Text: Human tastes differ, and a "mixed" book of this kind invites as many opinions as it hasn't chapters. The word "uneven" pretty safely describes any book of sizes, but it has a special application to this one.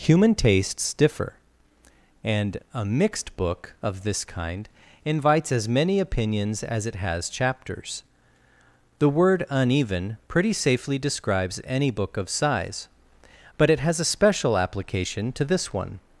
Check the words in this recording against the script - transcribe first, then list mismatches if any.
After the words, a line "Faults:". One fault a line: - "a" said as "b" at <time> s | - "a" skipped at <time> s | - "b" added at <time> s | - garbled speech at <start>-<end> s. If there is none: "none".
Human tastes differ, and a "mixed" book of this kind invites as many opinions as it has chapters. The word "uneven" pretty safely describes any book of size, but it has a special application to this one.
Faults:
- "hasn't" said as "has" at 7.0 s
- "sizes" said as "size" at 12.3 s